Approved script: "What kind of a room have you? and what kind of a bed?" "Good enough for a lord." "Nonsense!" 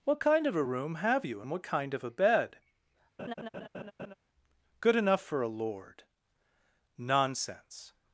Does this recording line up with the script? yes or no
yes